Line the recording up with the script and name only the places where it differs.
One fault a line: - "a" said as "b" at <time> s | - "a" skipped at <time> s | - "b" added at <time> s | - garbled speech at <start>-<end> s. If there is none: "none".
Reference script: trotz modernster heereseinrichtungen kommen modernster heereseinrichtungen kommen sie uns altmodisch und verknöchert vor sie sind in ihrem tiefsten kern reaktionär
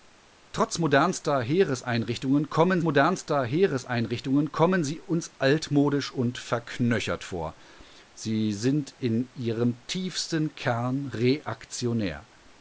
none